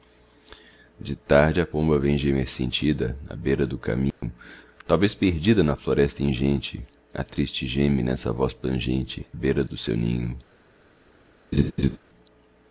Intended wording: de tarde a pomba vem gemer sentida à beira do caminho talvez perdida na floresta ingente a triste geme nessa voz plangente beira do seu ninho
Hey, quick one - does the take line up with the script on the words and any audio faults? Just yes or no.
no